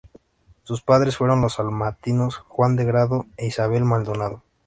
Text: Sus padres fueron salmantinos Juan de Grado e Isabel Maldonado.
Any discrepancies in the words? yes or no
yes